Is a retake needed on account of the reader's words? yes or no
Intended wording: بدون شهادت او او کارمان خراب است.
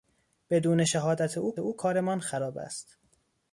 no